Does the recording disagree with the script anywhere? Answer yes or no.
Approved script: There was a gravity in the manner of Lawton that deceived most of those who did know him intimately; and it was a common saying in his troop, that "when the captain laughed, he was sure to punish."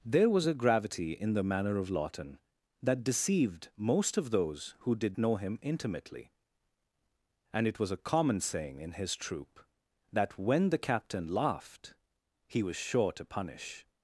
no